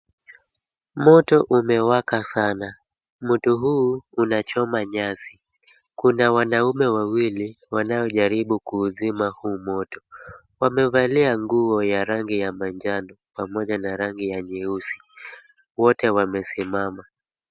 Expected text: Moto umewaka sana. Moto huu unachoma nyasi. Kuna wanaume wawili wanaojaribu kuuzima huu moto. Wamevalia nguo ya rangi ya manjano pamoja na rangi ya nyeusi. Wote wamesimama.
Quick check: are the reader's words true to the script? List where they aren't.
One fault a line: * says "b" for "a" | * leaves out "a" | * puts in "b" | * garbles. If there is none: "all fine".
all fine